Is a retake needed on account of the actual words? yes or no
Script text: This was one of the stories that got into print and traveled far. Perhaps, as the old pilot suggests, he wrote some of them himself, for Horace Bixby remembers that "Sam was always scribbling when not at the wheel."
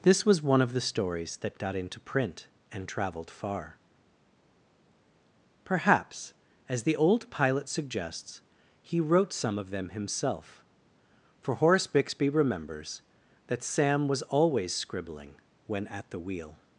yes